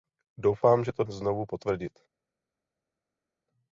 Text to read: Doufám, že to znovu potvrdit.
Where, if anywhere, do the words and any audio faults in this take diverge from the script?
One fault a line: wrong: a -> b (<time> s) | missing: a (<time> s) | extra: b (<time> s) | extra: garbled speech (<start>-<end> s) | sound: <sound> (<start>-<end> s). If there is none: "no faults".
no faults